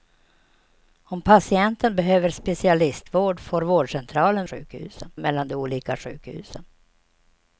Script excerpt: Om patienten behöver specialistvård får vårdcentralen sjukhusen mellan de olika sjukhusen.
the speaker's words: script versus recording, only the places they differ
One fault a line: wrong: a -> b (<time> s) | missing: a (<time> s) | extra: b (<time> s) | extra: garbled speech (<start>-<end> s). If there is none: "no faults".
no faults